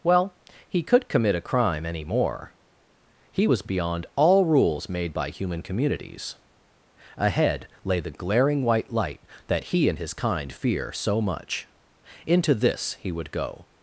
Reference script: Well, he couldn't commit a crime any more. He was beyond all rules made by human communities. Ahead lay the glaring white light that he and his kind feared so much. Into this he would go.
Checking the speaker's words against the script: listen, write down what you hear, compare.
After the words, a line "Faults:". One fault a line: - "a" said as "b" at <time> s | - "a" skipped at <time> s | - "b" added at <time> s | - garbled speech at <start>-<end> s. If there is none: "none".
Well, he could commit a crime any more. He was beyond all rules made by human communities. Ahead lay the glaring white light that he and his kind fear so much. Into this he would go.
Faults:
- "couldn't" said as "could" at 0.8 s
- "feared" said as "fear" at 10.5 s